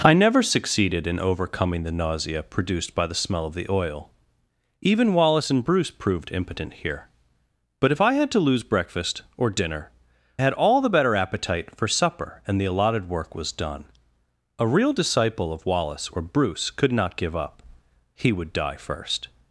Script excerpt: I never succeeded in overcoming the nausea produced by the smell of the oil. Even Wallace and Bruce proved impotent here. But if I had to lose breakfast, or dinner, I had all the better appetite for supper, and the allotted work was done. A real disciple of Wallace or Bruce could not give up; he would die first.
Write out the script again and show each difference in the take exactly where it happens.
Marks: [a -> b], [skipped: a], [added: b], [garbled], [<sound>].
I never succeeded in overcoming the nausea produced by the smell of the oil. Even Wallace and Bruce proved impotent here. But if I had to lose breakfast, or dinner, [skipped: I] had all the better appetite for supper, and the allotted work was done. A real disciple of Wallace or Bruce could not give up; he would die first.